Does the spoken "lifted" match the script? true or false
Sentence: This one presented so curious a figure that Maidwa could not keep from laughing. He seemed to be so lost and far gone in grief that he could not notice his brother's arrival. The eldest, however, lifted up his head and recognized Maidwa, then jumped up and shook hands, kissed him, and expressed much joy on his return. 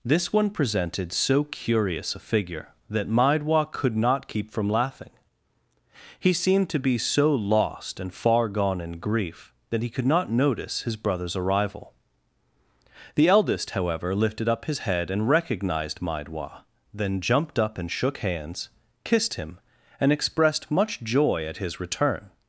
true